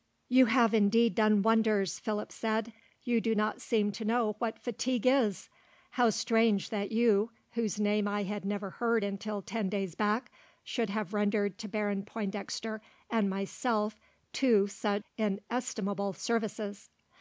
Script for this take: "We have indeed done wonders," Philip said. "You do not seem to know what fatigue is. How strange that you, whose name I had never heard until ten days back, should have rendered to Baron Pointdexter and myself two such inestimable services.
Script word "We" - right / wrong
wrong